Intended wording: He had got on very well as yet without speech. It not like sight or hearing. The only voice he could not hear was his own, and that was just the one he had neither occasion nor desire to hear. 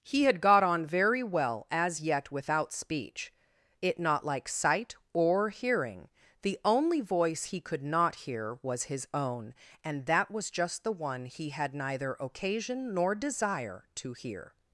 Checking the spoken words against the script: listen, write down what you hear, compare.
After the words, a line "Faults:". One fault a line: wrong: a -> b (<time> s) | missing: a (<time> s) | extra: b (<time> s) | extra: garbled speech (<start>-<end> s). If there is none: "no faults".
He had got on very well as yet without speech. It not like sight or hearing. The only voice he could not hear was his own, and that was just the one he had neither occasion nor desire to hear.
Faults:
no faults